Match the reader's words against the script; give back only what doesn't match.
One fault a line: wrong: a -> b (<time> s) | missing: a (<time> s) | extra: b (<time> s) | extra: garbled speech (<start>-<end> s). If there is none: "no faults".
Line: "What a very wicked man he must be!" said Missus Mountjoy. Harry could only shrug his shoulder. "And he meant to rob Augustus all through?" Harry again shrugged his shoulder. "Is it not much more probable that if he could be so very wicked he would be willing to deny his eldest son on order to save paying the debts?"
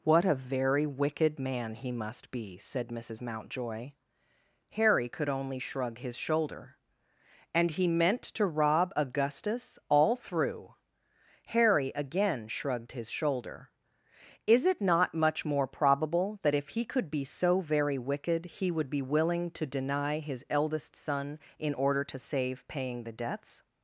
wrong: on -> in (21.6 s)